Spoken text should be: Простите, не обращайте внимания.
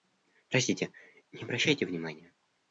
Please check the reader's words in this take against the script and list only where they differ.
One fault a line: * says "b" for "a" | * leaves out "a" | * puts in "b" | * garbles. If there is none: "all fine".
all fine